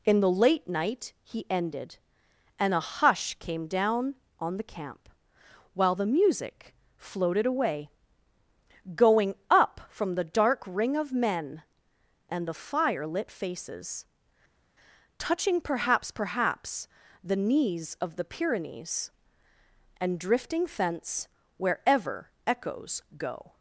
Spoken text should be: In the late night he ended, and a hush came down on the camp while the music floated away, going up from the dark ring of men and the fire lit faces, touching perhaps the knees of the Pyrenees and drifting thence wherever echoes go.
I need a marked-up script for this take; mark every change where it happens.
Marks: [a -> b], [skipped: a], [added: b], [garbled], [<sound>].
In the late night he ended, and a hush came down on the camp while the music floated away, going up from the dark ring of men and the fire lit faces, touching perhaps [added: perhaps] the knees of the Pyrenees and drifting thence wherever echoes go.